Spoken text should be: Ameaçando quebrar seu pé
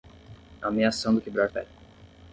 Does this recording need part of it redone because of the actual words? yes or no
yes